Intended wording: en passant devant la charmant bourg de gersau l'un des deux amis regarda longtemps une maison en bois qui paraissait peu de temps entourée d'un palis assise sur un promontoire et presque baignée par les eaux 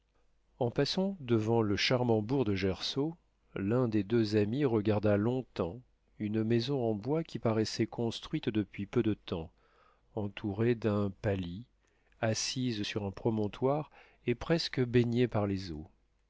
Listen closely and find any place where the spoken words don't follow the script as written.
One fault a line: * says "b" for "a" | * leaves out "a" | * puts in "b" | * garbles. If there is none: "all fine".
* says "le" for "la"
* puts in "construite depuis"